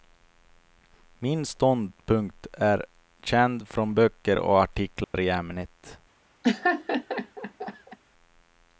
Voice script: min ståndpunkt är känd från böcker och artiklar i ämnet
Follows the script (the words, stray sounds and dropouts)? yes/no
no